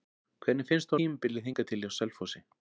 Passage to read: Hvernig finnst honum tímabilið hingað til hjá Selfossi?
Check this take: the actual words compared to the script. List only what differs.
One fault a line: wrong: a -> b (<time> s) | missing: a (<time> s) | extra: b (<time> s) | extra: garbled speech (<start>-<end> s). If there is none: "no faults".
missing: honum (0.9 s)